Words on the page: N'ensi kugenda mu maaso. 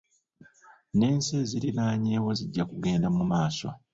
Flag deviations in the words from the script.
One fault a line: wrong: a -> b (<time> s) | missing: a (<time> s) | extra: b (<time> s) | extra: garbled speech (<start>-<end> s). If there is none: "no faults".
extra: eziriraanyeewo zijja (1.4 s)